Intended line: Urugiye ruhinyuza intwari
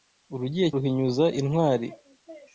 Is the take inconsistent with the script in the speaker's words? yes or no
no